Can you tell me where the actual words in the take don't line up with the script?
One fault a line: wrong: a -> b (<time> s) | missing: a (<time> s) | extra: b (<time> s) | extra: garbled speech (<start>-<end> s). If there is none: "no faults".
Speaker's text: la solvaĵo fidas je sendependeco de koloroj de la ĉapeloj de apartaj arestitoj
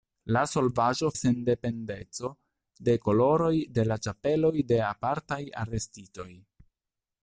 missing: fidas je (1.1 s)